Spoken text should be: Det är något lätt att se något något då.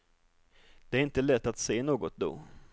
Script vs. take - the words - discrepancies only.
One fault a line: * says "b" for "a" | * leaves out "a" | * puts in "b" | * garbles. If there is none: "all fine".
* says "inte" for "något"
* leaves out "något"